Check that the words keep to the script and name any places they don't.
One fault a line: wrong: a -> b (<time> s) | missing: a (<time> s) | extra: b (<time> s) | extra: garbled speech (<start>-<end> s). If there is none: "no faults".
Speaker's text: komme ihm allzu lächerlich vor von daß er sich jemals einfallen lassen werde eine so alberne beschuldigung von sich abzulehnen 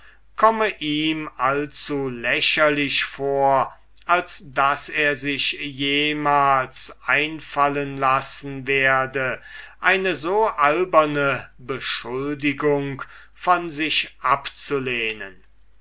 wrong: von -> als (4.1 s)